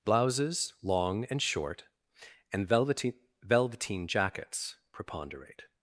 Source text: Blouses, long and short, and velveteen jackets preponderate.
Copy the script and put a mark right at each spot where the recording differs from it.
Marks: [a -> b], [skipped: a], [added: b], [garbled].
Blouses, long and short, and velveteen [added: velveteen] jackets preponderate.